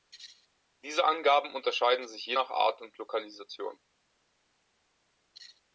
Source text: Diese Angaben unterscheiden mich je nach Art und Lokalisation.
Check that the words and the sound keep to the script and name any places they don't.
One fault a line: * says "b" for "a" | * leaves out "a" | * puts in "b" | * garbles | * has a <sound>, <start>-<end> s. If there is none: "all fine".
* says "sich" for "mich"